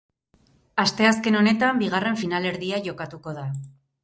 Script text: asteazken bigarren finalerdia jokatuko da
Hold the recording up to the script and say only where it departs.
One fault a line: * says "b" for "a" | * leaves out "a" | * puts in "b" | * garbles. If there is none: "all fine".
* puts in "honetan"